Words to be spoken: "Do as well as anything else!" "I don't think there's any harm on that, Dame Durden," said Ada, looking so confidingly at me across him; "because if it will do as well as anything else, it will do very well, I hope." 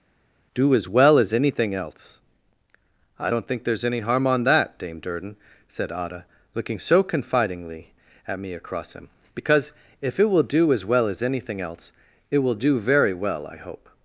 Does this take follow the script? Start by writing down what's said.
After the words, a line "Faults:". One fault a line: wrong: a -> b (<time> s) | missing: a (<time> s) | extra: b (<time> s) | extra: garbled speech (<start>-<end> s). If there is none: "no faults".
"Do as well as anything else!" "I don't think there's any harm on that, Dame Durden," said Ada, looking so confidingly at me across him; "because if it will do as well as anything else, it will do very well, I hope."
Faults:
no faults